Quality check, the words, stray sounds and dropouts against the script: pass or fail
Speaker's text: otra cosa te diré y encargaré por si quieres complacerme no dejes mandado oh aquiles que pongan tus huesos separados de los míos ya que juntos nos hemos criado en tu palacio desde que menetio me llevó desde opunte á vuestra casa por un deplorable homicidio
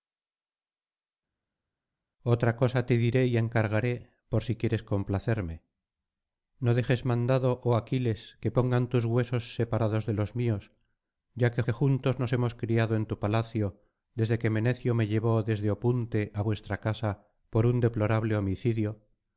fail